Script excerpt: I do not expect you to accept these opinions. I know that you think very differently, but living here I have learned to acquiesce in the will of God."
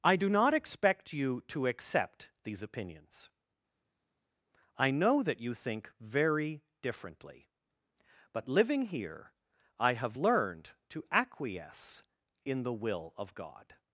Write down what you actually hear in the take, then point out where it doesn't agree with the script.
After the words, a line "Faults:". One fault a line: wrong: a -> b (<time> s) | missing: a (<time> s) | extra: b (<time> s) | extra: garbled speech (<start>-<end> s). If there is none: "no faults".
I do not expect you to accept these opinions. I know that you think very differently, but living here I have learned to acquiesce in the will of God."
Faults:
no faults